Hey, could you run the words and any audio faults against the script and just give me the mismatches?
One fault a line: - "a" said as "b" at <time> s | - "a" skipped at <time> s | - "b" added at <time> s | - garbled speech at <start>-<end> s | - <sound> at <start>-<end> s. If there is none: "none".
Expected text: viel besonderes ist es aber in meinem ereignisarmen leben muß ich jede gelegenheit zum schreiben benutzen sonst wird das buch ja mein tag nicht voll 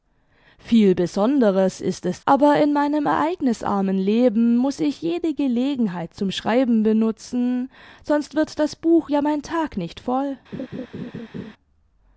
- laugh at 10.5-11.5 s